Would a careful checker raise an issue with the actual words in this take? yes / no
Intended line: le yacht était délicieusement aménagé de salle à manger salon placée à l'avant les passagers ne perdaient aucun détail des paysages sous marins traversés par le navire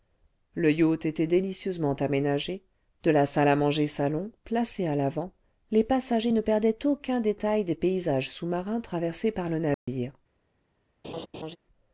yes